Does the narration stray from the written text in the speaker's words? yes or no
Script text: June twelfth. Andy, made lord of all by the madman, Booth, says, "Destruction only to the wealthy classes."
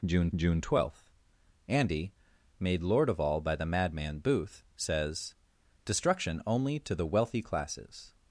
yes